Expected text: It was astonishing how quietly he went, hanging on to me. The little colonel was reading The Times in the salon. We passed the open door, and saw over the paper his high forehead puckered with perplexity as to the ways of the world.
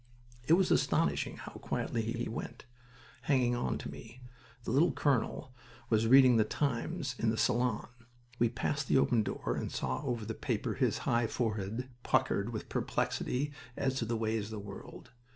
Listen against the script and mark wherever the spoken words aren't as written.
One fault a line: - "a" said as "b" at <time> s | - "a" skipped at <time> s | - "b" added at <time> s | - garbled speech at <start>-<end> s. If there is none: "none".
- "he" added at 2.1 s